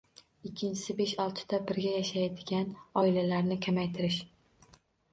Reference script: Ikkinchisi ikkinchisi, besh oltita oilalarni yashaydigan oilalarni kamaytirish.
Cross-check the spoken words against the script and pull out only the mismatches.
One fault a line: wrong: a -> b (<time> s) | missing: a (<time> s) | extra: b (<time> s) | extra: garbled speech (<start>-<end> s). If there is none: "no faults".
missing: ikkinchisi (0.9 s)
wrong: oilalarni -> birga (1.7 s)